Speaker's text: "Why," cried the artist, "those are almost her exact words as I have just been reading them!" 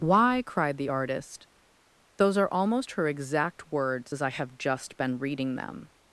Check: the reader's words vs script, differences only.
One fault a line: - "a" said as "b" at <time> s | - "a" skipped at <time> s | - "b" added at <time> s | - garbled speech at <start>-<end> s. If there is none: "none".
none